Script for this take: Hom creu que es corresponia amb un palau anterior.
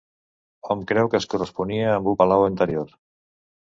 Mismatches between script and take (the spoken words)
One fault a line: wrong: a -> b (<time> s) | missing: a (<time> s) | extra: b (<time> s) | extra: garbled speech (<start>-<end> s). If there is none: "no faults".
no faults